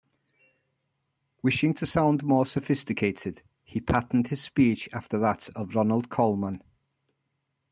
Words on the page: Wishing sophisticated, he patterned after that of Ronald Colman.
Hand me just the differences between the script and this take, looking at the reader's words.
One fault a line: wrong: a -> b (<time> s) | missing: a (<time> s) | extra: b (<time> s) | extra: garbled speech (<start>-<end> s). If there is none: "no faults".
extra: to sound more (1.8 s)
extra: his speech (4.3 s)